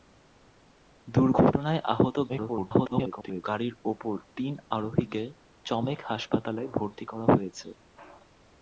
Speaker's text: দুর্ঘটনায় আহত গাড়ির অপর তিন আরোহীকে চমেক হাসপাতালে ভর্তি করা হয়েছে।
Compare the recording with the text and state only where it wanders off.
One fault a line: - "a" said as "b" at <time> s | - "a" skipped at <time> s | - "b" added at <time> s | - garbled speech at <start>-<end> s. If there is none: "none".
- garbled speech at 2.3-3.4 s